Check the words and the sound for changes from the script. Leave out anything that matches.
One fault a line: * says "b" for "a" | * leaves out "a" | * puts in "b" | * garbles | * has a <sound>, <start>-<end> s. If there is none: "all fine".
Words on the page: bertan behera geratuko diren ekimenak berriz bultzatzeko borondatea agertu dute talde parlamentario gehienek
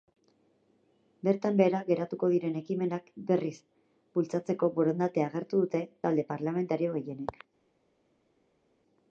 all fine